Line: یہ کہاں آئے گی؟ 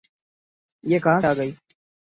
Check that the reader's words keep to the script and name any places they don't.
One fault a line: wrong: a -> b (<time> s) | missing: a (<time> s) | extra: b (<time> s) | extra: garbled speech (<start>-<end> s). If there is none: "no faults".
no faults